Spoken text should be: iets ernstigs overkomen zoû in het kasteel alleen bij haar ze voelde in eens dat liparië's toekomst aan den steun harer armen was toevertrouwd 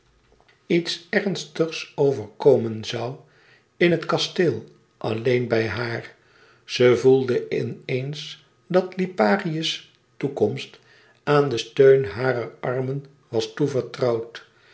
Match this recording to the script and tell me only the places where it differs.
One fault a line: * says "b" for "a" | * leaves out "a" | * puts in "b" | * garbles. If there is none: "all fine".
all fine